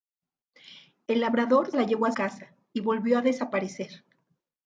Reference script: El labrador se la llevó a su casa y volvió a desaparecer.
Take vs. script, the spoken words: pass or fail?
fail